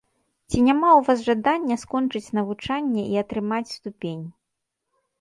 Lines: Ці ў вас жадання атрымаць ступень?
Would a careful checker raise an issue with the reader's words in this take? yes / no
yes